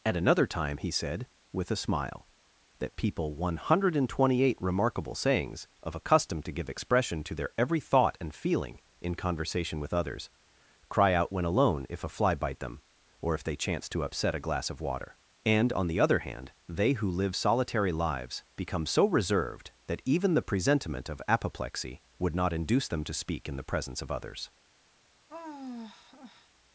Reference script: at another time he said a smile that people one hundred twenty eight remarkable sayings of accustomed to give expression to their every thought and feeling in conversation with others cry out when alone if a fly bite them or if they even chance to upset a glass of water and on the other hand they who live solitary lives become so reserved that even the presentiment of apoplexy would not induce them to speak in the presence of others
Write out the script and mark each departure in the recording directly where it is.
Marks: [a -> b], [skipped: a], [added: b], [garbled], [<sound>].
at another time he said [added: with] a smile that people one hundred twenty eight remarkable sayings of accustomed to give expression to their every thought and feeling in conversation with others cry out when alone if a fly bite them or if they [skipped: even] chance to upset a glass of water and on the other hand they who live solitary lives become so reserved that even the presentiment of apoplexy would not induce them to speak in the presence of others [sigh]